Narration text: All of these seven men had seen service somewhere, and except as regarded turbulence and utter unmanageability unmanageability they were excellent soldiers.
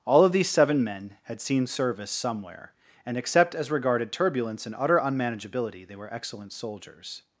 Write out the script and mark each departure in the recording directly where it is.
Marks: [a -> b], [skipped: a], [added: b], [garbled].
All of these seven men had seen service somewhere, and except as regarded turbulence and utter unmanageability [skipped: unmanageability] they were excellent soldiers.